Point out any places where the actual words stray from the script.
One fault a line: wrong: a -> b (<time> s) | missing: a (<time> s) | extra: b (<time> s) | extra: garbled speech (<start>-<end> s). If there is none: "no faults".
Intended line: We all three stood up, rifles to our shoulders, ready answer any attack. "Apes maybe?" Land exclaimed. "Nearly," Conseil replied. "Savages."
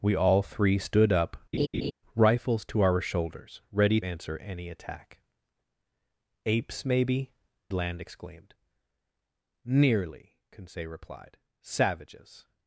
no faults